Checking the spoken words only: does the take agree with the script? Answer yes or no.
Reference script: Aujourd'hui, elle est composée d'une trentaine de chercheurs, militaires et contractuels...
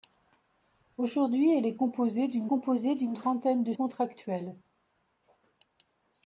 no